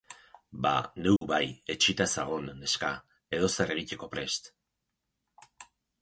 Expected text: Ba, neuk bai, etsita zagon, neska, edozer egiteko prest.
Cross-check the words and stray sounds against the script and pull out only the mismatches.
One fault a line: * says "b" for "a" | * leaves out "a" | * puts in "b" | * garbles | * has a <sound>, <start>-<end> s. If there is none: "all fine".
* has a dropout, 1.2-1.2 s